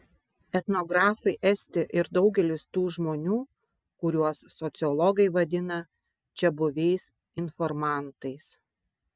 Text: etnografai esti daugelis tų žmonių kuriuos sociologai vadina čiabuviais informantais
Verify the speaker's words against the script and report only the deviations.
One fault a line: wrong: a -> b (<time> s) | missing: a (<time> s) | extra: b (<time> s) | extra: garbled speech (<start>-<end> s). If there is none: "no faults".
extra: ir (2.0 s)